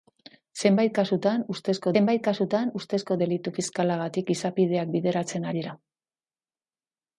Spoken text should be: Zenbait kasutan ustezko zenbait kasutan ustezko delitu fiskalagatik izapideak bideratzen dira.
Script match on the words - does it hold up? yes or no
yes